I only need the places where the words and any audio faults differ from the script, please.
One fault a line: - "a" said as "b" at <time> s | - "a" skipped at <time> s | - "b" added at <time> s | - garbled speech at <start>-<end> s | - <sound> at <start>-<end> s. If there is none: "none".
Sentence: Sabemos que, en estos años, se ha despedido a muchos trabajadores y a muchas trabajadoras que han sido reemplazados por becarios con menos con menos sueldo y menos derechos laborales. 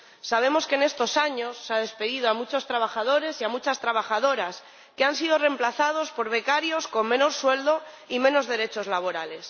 - "con menos" skipped at 7.4 s